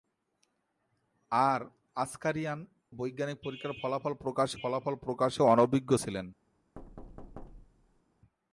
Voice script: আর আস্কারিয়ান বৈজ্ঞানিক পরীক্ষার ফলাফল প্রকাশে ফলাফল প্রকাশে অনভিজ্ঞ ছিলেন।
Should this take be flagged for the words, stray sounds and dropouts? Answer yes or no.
yes